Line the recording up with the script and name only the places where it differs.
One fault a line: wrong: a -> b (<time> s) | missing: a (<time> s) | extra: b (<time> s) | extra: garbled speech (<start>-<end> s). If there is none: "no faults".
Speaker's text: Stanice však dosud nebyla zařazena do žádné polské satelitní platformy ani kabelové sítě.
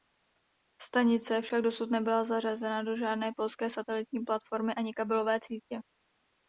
no faults